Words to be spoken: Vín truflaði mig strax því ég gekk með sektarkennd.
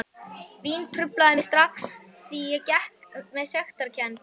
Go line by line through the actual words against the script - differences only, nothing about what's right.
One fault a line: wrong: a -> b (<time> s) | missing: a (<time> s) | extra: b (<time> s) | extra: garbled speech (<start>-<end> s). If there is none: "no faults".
no faults